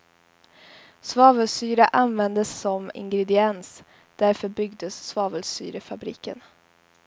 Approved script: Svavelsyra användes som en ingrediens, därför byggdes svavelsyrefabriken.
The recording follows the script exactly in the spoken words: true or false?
false